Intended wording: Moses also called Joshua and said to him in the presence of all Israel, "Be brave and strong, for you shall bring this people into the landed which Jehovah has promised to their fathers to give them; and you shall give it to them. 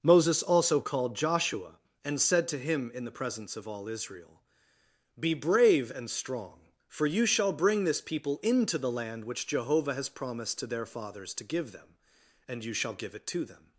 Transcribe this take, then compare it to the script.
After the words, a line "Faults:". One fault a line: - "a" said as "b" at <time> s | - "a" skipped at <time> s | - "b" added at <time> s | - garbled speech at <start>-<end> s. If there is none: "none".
Moses also called Joshua and said to him in the presence of all Israel, "Be brave and strong, for you shall bring this people into the land which Jehovah has promised to their fathers to give them; and you shall give it to them.
Faults:
- "landed" said as "land" at 8.9 s